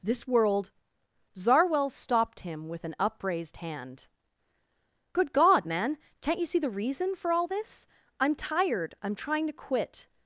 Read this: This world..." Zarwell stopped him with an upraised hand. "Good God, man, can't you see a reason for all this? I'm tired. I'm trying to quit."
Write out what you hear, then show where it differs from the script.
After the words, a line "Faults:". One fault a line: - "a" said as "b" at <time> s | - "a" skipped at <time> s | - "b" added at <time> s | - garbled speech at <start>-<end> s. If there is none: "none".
This world..." Zarwell stopped him with an upraised hand. "Good God, man, can't you see the reason for all this? I'm tired. I'm trying to quit."
Faults:
- "a" said as "the" at 6.6 s